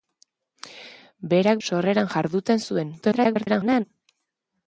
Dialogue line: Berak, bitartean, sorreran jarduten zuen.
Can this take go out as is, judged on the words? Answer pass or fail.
fail